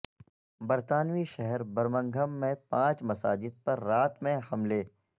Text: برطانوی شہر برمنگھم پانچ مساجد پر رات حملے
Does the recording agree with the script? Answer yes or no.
no